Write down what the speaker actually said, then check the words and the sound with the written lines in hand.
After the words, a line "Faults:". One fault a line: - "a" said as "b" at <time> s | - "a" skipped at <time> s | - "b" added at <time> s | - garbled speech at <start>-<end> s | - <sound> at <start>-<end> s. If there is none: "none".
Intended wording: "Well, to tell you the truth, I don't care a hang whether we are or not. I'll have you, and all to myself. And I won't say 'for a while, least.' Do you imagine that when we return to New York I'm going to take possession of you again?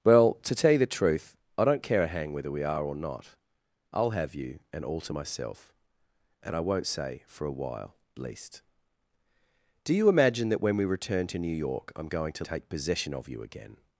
"Well, to tell you the truth, I don't care a hang whether we are or not. I'll have you, and all to myself. And I won't say 'for a while, least.' Do you imagine that when we return to New York I'm going to take possession of you again?
Faults:
none